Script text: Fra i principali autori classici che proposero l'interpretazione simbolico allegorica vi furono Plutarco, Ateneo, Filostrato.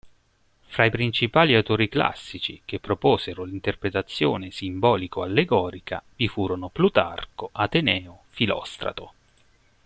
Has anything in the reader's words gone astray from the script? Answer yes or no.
no